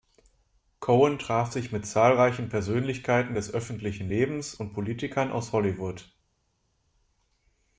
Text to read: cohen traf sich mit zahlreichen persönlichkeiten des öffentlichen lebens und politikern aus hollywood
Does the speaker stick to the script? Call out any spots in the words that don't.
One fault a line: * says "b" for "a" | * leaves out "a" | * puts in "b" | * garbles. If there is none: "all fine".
all fine